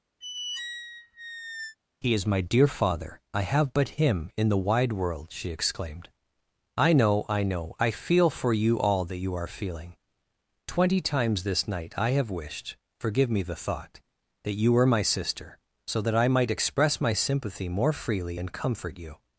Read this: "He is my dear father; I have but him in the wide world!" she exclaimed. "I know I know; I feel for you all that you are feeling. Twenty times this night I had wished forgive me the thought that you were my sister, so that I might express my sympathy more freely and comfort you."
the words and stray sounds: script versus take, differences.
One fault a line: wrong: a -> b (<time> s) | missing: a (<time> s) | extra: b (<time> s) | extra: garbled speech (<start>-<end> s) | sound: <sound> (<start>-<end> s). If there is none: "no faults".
sound: squeak (0.2-1.8 s)
wrong: had -> have (12.1 s)